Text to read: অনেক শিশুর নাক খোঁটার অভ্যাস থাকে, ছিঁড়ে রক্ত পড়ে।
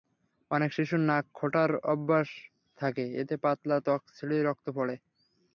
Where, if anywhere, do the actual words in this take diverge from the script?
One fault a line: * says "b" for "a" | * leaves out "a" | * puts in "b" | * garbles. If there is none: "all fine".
* puts in "এতে পাতলা ত্বক"